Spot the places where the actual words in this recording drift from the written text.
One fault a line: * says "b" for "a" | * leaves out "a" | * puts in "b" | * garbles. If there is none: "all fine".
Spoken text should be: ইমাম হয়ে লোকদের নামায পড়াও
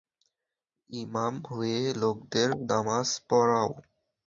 all fine